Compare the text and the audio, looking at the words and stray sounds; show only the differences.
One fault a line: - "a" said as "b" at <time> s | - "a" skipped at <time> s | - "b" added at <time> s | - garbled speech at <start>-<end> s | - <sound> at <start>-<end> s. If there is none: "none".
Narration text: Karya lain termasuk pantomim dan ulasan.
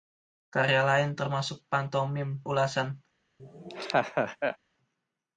- "dan" skipped at 2.4 s
- laugh at 3.4-4.6 s